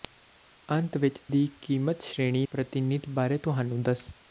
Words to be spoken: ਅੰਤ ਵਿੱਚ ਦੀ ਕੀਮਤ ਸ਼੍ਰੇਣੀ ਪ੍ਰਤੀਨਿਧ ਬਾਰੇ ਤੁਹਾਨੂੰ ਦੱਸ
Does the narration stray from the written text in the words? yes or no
no